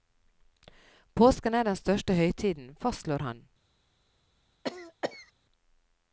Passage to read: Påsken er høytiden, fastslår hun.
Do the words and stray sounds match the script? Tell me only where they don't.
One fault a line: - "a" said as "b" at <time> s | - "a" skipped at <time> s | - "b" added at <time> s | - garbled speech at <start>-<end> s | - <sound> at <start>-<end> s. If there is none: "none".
- "den største" added at 1.6 s
- "hun" said as "han" at 3.2 s
- cough at 4.6-5.3 s